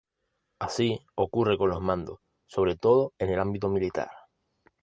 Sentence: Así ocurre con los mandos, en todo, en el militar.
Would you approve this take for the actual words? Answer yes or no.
no